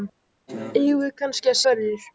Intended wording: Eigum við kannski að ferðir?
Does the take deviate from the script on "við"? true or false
false